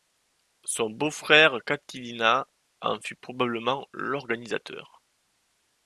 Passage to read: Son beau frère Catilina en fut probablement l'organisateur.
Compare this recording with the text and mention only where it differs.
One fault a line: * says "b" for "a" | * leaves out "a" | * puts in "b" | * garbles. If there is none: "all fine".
all fine